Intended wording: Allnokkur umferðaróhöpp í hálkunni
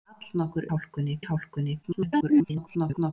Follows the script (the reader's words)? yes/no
no